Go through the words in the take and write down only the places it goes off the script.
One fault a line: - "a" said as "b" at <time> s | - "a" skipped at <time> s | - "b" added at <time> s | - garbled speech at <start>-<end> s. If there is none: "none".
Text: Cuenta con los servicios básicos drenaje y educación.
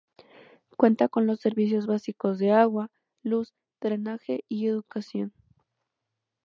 - "de agua luz" added at 2.4 s